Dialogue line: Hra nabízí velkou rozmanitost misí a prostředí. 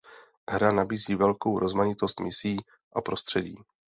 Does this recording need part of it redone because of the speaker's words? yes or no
no